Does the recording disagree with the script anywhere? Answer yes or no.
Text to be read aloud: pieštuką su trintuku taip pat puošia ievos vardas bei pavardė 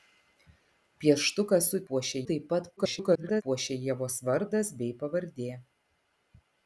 yes